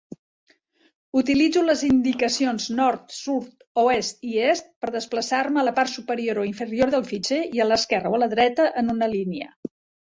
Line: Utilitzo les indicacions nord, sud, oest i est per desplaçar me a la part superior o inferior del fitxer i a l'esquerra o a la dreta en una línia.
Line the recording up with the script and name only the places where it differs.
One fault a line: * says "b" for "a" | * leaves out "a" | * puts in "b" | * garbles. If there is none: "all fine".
all fine